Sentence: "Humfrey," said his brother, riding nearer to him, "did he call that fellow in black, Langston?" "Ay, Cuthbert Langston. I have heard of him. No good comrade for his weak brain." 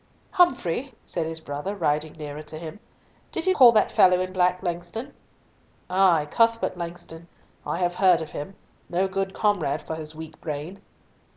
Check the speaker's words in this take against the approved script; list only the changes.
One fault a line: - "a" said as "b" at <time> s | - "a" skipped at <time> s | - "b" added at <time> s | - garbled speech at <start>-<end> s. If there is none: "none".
none